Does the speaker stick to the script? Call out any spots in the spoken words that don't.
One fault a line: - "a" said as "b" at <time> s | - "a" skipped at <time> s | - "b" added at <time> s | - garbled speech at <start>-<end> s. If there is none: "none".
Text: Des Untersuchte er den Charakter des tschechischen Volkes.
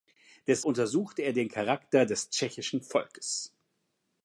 none